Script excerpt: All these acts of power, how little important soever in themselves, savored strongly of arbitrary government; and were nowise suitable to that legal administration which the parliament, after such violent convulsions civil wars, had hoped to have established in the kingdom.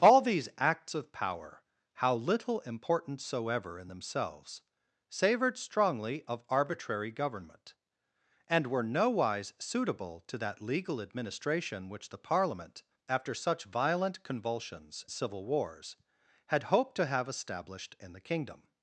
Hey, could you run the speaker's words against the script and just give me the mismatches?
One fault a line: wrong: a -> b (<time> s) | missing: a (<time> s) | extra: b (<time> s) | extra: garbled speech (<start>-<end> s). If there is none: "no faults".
no faults